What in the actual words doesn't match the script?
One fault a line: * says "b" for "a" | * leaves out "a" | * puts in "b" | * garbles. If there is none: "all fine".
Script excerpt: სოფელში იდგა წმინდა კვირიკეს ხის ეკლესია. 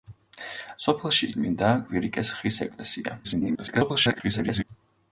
* leaves out "იდგა"
* garbles